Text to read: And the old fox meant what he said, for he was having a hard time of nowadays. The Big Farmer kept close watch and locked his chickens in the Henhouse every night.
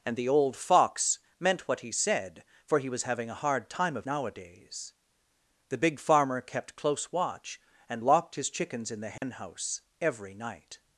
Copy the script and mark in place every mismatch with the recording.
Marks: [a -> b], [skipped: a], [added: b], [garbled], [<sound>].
And the old fox meant what he said, for he was having a hard time of nowadays. The Big Farmer kept close watch and locked his chickens in the Henhouse [dropout] every night.